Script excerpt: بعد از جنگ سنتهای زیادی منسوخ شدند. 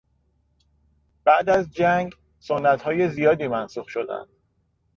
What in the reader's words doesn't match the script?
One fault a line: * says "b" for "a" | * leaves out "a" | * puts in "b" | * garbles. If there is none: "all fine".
all fine